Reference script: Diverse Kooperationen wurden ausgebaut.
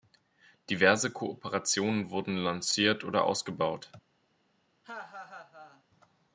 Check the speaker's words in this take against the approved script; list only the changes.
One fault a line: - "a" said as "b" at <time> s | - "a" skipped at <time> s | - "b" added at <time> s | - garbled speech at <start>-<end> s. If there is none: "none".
- "lanciert oder" added at 2.4 s